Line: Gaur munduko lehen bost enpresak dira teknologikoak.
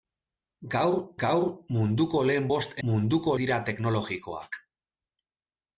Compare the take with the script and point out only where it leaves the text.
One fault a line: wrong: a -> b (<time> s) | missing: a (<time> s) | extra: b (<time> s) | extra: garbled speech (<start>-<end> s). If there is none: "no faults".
extra: gaur (1.2 s)
wrong: enpresak -> munduko (2.9 s)